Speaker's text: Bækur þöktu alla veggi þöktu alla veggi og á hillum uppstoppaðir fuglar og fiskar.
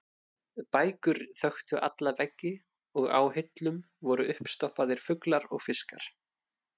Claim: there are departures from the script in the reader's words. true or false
true